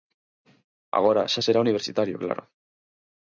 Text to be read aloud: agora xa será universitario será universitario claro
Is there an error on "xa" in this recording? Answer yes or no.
no